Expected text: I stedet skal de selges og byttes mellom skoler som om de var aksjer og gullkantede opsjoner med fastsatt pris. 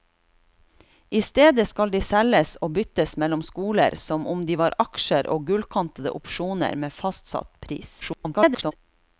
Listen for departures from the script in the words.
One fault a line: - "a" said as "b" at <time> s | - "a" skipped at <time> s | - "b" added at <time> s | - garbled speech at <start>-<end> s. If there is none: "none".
- garbled speech at 8.0-8.7 s